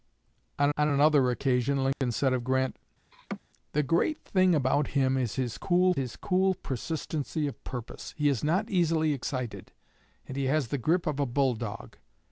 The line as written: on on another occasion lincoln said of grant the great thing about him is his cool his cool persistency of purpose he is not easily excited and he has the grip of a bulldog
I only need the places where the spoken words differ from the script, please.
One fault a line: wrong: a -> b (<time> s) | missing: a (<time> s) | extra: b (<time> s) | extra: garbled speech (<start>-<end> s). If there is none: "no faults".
no faults